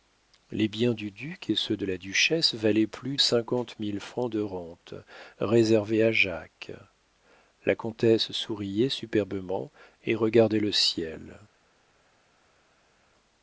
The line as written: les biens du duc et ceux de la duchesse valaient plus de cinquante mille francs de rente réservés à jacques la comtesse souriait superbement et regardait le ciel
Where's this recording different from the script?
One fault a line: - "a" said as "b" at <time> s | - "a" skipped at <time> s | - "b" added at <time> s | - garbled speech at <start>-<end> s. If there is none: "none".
- "de" skipped at 3.2 s